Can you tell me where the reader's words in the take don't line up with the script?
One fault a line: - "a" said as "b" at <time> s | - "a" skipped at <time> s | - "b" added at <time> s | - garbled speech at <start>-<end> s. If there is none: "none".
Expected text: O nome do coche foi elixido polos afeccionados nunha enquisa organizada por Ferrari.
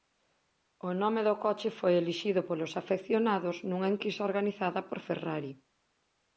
none